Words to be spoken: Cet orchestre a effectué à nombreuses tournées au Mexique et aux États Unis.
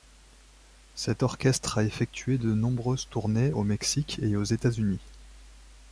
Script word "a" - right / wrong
right